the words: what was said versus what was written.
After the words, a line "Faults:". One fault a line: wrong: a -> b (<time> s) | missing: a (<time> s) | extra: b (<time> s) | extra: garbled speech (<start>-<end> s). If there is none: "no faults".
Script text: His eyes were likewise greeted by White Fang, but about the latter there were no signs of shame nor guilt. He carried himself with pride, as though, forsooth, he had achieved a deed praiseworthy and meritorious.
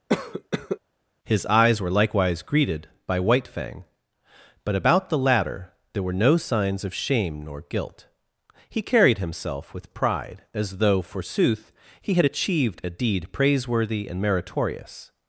His eyes were likewise greeted by White Fang, but about the latter there were no signs of shame nor guilt. He carried himself with pride, as though, forsooth, he had achieved a deed praiseworthy and meritorious.
Faults:
no faults